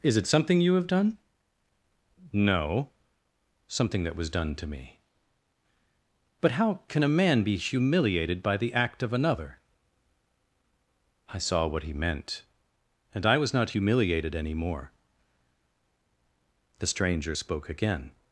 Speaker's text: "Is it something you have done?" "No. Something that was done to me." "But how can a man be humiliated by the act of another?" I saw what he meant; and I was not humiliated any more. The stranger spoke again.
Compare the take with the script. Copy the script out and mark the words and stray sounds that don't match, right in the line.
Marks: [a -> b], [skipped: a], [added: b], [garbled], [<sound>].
"Is it something you have done?" "No. Something that was done to me." "But how can a man be humiliated by the act of another?" I saw what he meant; and I was not humiliated any more. The stranger spoke again.